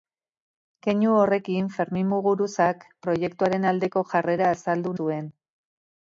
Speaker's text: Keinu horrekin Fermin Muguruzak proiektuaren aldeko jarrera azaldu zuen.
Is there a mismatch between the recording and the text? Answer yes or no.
no